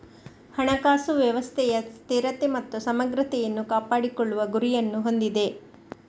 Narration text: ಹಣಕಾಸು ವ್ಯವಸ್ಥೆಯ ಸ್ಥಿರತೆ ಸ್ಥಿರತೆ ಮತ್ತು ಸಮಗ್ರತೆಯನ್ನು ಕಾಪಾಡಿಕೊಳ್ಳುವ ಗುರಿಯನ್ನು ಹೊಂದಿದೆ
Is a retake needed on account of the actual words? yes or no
yes